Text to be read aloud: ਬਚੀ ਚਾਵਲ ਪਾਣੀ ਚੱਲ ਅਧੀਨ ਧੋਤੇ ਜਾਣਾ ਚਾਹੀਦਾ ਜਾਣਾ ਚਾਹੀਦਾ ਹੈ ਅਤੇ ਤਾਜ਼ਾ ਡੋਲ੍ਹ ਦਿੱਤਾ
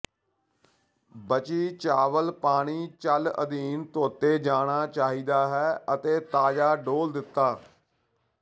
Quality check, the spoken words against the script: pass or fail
fail